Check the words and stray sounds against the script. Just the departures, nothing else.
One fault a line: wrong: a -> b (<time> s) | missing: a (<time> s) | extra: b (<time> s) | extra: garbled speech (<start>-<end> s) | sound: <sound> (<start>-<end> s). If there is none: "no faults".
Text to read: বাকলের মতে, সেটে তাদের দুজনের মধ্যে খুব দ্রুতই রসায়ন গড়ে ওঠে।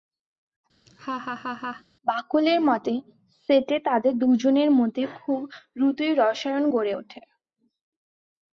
sound: laugh (0.9-1.8 s)